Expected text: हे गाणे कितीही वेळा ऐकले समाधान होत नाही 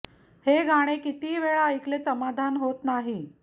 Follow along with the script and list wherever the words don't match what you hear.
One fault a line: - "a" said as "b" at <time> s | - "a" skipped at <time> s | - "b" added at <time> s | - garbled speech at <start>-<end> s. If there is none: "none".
none